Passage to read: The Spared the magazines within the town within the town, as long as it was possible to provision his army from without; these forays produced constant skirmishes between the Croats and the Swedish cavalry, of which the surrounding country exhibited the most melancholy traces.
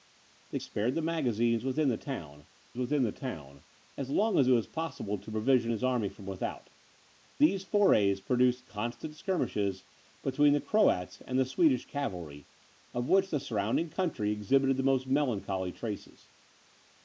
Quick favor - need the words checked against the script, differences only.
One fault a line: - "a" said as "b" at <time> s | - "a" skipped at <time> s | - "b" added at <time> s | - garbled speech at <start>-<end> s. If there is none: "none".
none